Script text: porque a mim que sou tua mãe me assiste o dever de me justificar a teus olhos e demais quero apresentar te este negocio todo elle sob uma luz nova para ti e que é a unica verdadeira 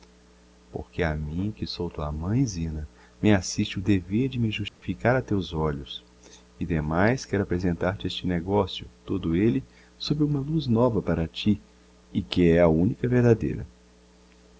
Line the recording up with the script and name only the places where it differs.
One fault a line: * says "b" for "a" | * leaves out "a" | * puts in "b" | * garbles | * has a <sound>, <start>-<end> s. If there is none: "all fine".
* puts in "zina"
* has a dropout, 4.7-4.8 s